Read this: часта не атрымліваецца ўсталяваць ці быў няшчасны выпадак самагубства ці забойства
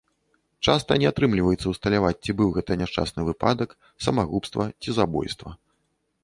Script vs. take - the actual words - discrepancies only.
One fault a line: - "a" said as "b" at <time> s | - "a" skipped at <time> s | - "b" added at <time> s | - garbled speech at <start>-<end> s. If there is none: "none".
- "гэта" added at 2.6 s